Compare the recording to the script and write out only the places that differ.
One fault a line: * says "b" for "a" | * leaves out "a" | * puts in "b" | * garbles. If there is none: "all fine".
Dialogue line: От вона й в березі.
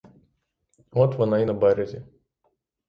* says "на" for "в"